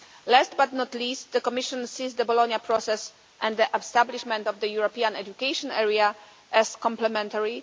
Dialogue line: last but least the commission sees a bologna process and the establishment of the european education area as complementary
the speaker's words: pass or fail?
fail